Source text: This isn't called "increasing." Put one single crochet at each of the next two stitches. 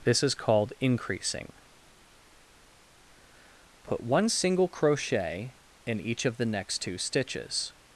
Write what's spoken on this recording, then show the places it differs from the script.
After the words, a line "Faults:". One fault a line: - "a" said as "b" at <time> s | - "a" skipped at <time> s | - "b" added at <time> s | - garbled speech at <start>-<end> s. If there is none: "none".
This is called "increasing." Put one single crochet in each of the next two stitches.
Faults:
- "isn't" said as "is" at 0.2 s
- "at" said as "in" at 5.8 s